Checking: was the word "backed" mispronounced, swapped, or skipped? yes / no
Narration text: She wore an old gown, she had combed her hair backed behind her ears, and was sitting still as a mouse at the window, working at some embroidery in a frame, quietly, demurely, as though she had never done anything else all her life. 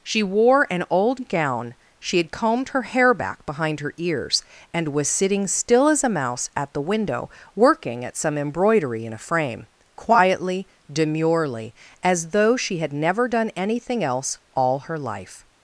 yes